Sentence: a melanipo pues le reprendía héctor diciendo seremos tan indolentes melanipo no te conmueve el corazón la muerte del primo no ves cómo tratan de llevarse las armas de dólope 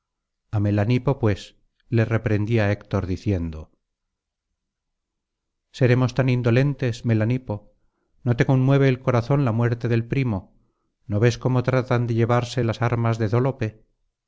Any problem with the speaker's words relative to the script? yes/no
no